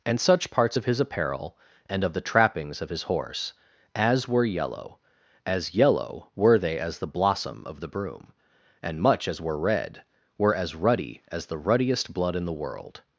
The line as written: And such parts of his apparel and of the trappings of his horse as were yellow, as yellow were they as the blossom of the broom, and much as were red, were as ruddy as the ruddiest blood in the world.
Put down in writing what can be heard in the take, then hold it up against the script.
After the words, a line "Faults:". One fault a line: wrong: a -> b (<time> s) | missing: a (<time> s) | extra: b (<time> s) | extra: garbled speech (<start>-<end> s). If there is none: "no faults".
And such parts of his apparel and of the trappings of his horse as were yellow, as yellow were they as the blossom of the broom, and much as were red, were as ruddy as the ruddiest blood in the world.
Faults:
no faults